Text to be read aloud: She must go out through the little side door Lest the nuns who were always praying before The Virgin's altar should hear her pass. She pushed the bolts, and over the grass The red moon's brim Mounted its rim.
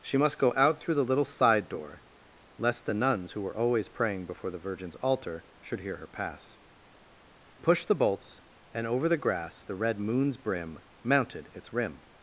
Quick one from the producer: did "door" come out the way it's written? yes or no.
yes